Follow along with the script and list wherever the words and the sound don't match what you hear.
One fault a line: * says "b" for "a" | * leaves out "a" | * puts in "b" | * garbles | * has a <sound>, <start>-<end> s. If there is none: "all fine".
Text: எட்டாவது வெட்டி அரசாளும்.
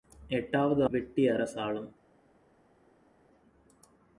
all fine